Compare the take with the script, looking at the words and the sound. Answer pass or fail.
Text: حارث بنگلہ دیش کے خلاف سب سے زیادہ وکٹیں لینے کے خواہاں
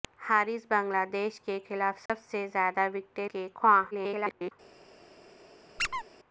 fail